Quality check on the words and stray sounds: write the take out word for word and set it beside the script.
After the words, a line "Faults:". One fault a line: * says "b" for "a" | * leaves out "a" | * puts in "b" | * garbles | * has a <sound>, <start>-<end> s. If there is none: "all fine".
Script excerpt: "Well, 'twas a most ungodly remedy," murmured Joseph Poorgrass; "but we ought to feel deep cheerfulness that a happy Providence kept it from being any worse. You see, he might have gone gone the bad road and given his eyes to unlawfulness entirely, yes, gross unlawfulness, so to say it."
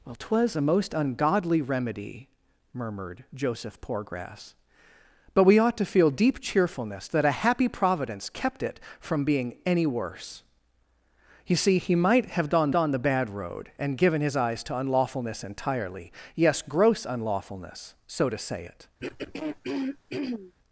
"Well, 'twas a most ungodly remedy," murmured Joseph Poorgrass; "but we ought to feel deep cheerfulness that a happy Providence kept it from being any worse. You see, he might have gone gone the bad road and given his eyes to unlawfulness entirely, yes, gross unlawfulness, so to say it."
Faults:
* has a throat clearing, 19.0-20.5 s